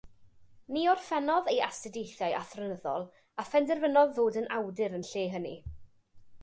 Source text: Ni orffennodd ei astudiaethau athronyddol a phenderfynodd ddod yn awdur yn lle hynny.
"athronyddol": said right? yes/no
yes